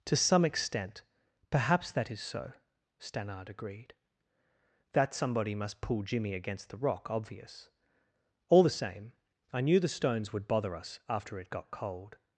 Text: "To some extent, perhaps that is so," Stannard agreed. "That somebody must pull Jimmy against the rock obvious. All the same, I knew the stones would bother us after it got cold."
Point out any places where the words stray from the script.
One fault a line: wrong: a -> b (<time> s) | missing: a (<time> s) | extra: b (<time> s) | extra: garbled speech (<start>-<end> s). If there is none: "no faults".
no faults